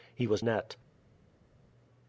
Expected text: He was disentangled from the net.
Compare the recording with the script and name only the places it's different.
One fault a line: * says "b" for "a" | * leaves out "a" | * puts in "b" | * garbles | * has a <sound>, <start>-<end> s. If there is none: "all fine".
* leaves out "disentangled from the"